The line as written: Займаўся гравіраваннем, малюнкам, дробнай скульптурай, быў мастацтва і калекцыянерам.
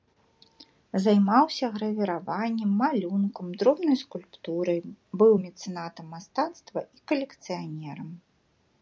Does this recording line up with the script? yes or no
no